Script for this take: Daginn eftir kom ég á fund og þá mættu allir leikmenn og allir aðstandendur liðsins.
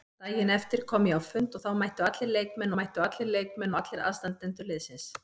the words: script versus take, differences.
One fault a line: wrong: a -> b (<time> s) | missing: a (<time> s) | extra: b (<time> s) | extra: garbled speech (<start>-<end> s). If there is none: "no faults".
extra: mættu allir leikmenn (2.8 s)